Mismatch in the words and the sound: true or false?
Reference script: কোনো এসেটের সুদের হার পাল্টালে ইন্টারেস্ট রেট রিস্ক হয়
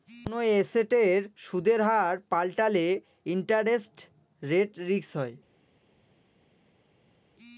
false